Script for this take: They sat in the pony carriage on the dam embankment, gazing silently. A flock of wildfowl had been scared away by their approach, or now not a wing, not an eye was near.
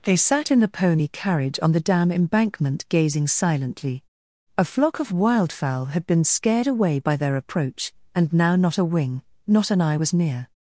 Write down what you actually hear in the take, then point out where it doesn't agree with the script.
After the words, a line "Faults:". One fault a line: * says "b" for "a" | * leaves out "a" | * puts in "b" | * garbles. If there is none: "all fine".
They sat in the pony carriage on the dam embankment, gazing silently. A flock of wildfowl had been scared away by their approach, and now not a wing, not an eye was near.
Faults:
* says "and" for "or"